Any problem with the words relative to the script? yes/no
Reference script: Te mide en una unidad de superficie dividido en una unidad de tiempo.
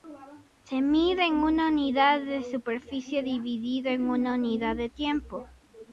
yes